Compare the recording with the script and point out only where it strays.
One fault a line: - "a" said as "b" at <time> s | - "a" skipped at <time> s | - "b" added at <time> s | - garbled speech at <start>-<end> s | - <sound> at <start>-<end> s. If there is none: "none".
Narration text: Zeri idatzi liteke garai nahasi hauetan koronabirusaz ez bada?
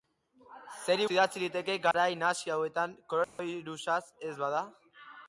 - dropout at 1.9-1.9 s
- dropout at 3.2-3.4 s